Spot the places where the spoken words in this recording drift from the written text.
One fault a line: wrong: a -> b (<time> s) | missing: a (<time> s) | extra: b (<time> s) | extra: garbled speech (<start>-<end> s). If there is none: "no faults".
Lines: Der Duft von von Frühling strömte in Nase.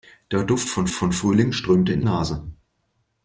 no faults